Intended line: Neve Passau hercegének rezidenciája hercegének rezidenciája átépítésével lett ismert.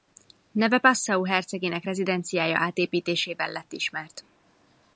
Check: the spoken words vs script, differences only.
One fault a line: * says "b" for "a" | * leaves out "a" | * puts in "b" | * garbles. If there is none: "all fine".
* leaves out "hercegének rezidenciája"